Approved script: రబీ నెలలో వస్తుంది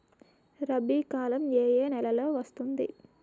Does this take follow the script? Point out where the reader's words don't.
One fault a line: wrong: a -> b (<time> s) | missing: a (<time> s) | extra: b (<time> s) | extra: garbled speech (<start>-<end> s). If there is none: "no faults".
extra: కాలం ఏ ఏ (1.1 s)